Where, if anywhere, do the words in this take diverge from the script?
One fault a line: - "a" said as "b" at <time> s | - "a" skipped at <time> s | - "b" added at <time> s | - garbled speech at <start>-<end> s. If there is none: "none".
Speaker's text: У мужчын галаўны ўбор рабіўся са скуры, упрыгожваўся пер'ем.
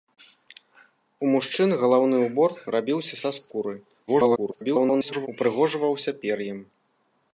- garbled speech at 4.1-5.3 s